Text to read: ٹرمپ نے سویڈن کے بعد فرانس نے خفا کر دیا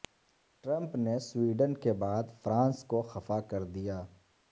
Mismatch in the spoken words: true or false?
true